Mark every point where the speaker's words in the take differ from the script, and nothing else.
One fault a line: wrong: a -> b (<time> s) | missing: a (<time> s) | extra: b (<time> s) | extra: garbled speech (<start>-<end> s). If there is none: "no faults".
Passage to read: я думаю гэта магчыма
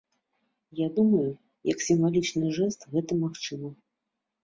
extra: як сімвалічны жэст (1.7 s)